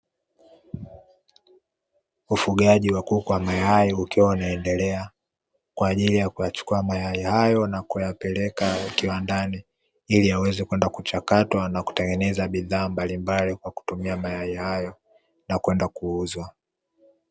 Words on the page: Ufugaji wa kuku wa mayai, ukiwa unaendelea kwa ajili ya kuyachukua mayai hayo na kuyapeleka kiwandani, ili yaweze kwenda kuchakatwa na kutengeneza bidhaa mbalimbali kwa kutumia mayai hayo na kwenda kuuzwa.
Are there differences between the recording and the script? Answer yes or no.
no